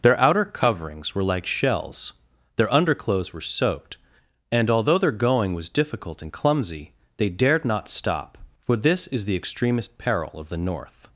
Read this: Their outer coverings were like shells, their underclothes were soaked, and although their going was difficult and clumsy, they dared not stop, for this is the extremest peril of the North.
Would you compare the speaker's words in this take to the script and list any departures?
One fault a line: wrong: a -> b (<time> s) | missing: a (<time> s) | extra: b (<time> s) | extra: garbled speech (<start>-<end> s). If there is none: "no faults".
no faults